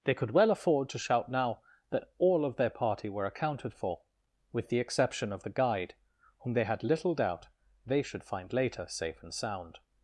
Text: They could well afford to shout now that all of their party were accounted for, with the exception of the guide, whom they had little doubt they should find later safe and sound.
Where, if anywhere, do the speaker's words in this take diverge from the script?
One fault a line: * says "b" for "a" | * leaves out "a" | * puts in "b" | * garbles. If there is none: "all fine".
all fine